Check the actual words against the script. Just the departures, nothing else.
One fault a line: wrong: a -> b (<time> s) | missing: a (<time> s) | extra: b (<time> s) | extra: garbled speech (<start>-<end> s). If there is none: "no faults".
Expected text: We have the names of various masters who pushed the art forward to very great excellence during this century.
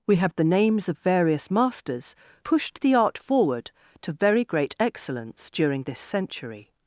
missing: who (2.1 s)